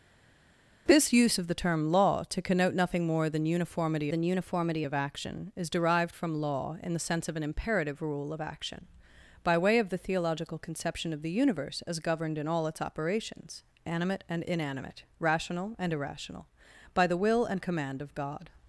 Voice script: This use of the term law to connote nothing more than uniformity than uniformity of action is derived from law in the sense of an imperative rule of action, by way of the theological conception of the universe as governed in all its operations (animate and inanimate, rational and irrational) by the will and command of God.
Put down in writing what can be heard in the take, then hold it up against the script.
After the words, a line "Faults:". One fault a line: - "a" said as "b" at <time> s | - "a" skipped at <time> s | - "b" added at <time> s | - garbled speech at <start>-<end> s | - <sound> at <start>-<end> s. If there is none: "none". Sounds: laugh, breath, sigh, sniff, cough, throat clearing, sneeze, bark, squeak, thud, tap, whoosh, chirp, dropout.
This use of the term law to connote nothing more than uniformity than uniformity of action is derived from law in the sense of an imperative rule of action, by way of the theological conception of the universe as governed in all its operations (animate and inanimate, rational and irrational) by the will and command of God.
Faults:
none